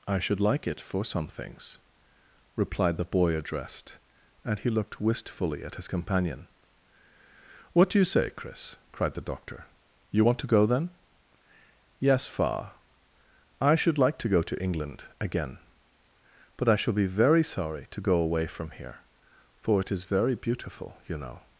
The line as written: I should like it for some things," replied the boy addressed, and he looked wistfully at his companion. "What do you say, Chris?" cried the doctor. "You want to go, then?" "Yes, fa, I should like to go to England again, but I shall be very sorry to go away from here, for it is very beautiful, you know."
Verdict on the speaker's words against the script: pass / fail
pass